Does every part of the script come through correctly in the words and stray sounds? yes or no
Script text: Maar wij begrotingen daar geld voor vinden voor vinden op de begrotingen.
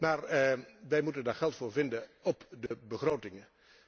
no